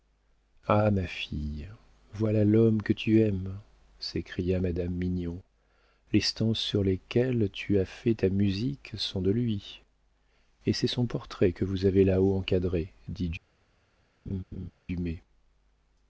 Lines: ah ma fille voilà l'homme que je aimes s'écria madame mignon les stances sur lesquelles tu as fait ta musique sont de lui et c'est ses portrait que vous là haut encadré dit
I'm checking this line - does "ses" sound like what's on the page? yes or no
no